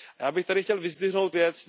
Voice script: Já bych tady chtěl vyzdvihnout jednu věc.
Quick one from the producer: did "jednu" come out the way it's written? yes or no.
no